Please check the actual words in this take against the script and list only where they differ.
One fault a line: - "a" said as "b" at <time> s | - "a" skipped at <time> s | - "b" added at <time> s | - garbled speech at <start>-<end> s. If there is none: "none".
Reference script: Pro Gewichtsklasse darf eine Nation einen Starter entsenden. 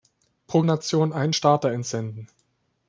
- "Gewichtsklasse darf eine" skipped at 0.6 s